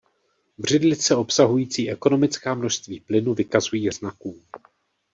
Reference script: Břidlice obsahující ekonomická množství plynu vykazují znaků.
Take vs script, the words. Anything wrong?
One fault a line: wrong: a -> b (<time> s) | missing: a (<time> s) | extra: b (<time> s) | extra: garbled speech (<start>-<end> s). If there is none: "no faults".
no faults